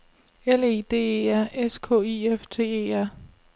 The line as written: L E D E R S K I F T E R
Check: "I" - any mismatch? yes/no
no